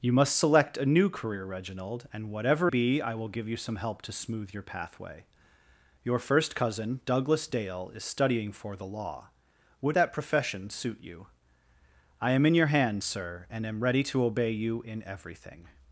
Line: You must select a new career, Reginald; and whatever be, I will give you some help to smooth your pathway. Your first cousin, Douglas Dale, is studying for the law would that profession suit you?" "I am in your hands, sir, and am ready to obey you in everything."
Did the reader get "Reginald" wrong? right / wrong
right